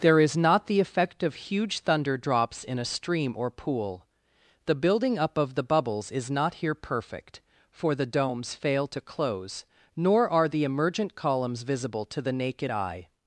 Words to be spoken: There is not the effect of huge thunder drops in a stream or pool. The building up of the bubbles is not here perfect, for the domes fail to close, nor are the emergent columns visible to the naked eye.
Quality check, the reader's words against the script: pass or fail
pass